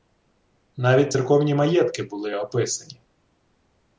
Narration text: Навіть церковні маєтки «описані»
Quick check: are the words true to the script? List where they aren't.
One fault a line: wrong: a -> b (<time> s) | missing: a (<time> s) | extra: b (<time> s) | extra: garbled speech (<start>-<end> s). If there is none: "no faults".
extra: були (2.0 s)